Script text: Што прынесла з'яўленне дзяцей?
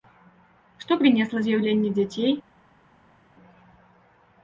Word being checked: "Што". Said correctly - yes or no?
yes